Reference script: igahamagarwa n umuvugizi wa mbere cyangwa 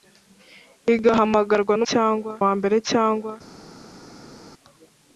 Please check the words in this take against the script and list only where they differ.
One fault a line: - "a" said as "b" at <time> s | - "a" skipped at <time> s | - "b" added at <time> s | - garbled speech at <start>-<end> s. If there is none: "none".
- "umuvugizi" said as "cyangwa" at 1.9 s